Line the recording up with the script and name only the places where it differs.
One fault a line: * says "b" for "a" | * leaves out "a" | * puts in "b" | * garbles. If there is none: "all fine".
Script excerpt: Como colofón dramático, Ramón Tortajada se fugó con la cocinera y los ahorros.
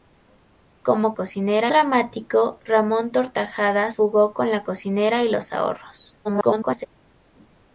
* says "cocinera" for "colofón"
* leaves out "se"
* garbles